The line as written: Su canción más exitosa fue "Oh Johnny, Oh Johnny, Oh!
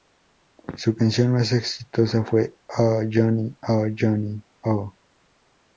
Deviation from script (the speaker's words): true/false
false